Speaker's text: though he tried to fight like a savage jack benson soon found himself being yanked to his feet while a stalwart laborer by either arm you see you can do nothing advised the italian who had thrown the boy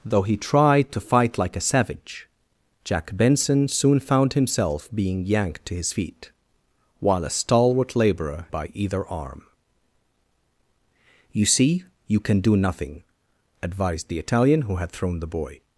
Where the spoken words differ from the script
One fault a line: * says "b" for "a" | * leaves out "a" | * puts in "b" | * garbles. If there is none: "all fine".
all fine